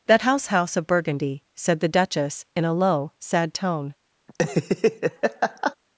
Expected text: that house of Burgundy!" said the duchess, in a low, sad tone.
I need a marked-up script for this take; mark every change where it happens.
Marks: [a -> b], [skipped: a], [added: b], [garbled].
that house [added: house] of Burgundy!" said the duchess, in a low, sad tone.